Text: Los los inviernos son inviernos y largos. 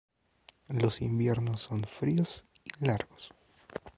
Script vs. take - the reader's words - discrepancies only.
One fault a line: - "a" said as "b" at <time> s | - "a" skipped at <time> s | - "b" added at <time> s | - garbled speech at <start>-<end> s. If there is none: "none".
- "los" skipped at 1.0 s
- "inviernos" said as "fríos" at 1.8 s